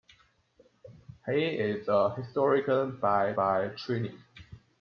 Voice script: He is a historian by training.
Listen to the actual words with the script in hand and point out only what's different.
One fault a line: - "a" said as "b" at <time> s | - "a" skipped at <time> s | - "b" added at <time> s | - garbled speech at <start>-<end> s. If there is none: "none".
- "by" added at 3.3 s